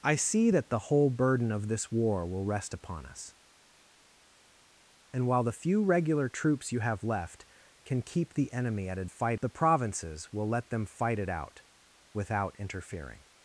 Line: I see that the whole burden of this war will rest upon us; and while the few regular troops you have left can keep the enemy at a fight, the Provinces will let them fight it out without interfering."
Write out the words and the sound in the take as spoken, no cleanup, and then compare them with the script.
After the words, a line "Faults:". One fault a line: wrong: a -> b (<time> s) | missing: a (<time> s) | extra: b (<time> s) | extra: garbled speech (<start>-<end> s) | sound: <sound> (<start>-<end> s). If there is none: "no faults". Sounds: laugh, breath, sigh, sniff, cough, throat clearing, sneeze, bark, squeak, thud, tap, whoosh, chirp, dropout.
I see that the whole burden of this war will rest upon us; and while the few regular troops you have left can keep the enemy at a fight, the Provinces will let them fight it out without interfering."
Faults:
no faults